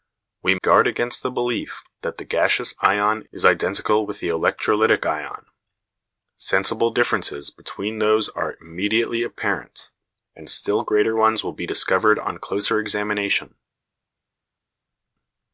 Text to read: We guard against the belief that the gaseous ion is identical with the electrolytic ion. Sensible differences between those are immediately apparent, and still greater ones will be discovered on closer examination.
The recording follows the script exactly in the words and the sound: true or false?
true